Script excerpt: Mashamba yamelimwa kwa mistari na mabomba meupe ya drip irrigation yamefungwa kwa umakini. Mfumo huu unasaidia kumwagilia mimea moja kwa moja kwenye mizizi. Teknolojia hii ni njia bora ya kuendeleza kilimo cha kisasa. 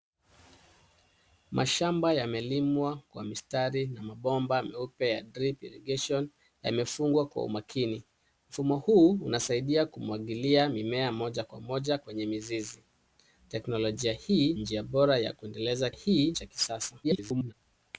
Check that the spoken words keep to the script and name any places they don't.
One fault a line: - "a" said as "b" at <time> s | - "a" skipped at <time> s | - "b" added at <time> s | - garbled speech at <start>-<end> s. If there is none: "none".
- "ni" skipped at 14.5 s
- "kilimo" said as "hii" at 15.9 s
- garbled speech at 17.0-17.5 s